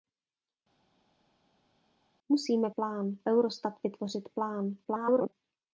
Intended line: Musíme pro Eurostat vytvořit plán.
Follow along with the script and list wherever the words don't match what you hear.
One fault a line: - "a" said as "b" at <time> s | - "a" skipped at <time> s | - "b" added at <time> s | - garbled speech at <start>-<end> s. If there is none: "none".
- "pro" said as "plán" at 2.7 s
- garbled speech at 4.8-5.3 s